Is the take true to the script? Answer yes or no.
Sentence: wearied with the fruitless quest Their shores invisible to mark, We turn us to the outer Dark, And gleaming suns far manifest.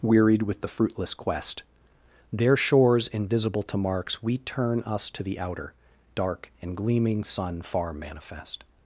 no